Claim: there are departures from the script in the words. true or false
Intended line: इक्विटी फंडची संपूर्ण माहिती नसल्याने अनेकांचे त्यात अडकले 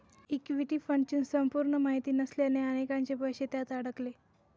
true